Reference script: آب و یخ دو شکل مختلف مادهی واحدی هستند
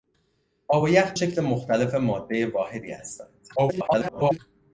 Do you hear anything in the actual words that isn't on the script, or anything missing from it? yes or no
yes